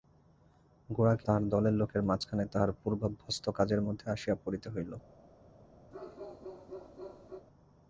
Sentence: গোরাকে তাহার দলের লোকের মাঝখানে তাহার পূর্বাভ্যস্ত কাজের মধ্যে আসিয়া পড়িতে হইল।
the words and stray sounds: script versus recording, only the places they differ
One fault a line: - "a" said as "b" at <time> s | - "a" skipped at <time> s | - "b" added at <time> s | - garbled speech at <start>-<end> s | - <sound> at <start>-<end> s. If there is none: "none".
- bark at 5.9-7.5 s